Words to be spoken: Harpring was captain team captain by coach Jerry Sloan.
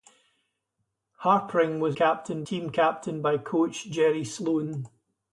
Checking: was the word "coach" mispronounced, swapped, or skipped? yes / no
no